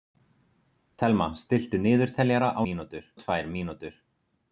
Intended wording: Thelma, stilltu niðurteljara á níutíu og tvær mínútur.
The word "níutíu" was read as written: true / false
false